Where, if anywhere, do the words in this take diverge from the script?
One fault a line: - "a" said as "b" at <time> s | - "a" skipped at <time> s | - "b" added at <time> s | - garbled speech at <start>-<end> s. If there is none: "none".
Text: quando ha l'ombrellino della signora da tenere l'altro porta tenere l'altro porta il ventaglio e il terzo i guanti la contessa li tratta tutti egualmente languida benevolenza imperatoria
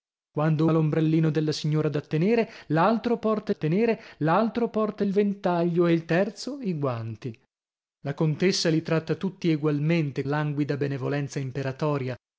none